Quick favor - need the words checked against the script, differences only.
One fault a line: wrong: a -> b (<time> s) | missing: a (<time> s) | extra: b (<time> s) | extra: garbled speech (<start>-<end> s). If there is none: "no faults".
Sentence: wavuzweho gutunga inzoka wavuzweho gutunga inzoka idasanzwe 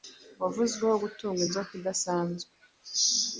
missing: wavuzweho gutunga inzoka (1.7 s)